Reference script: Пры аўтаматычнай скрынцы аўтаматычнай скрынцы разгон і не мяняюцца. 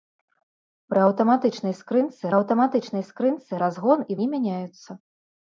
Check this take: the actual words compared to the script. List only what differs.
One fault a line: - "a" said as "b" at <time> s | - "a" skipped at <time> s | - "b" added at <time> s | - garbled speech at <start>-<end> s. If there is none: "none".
none